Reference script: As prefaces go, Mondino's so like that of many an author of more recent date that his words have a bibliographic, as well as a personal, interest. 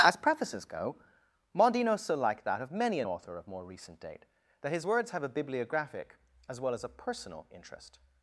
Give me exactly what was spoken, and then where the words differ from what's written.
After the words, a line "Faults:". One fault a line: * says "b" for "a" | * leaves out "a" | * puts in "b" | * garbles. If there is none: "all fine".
As prefaces go, Mondino's so like that of many an author of more recent date that his words have a bibliographic, as well as a personal, interest.
Faults:
all fine